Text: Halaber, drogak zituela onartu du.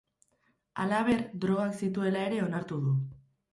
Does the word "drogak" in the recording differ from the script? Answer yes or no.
no